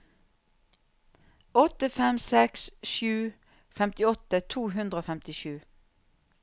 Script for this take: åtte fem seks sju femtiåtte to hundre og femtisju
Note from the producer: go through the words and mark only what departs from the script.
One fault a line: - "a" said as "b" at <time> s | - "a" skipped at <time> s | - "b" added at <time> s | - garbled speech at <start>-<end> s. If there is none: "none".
none